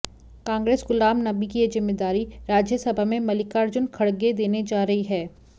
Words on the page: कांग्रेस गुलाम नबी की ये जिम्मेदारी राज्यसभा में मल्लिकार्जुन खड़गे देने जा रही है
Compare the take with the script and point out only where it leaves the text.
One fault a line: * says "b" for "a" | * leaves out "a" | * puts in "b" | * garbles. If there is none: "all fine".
all fine